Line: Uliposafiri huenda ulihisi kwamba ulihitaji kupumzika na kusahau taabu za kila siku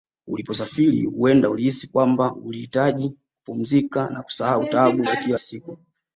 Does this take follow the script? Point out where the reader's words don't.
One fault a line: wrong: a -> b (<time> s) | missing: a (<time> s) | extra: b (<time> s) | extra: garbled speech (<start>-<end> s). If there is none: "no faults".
no faults